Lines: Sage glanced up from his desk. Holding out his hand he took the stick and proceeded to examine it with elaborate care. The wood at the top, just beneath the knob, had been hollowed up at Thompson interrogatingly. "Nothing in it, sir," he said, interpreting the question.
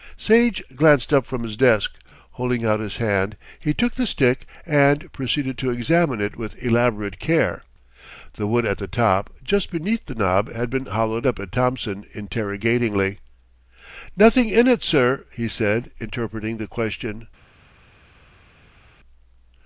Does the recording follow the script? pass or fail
pass